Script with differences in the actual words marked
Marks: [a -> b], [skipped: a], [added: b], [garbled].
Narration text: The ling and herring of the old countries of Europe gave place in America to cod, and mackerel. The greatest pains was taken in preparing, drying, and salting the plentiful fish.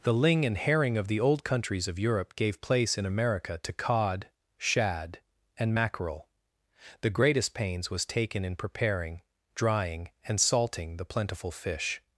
The ling and herring of the old countries of Europe gave place in America to cod, [added: shad] and mackerel. The greatest pains was taken in preparing, drying, and salting the plentiful fish.